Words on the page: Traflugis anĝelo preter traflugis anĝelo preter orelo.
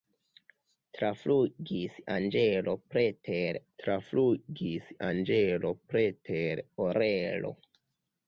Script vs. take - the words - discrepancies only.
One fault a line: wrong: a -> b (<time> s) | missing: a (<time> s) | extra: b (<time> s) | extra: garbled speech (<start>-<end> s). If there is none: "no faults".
no faults